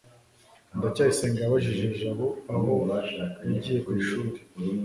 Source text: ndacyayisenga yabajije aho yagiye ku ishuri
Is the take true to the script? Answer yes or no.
no